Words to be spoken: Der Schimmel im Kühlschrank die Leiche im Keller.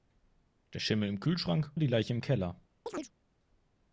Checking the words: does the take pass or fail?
pass